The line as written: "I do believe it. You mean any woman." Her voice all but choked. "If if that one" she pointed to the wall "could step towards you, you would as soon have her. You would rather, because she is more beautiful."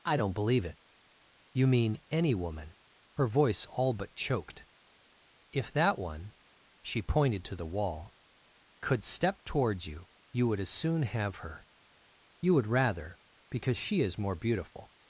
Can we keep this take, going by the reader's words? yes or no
no